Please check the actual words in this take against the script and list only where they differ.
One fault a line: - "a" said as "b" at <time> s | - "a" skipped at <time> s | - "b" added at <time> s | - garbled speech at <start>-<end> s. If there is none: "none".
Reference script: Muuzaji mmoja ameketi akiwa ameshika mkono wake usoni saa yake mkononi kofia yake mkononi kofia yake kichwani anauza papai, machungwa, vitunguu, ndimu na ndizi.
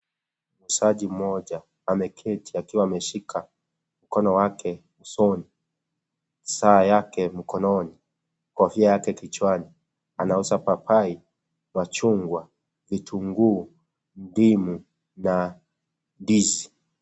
- "mkononi kofia yake" skipped at 9.1 s